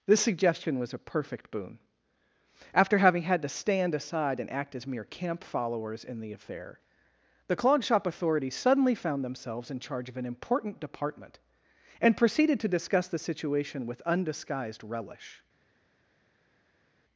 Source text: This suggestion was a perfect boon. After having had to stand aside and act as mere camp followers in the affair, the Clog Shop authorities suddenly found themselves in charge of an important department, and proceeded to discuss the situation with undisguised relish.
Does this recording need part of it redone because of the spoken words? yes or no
no